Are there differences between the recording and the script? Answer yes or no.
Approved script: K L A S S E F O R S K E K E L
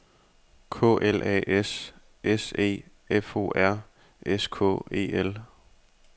yes